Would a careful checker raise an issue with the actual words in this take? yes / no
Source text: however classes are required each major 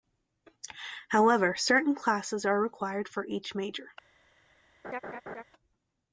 yes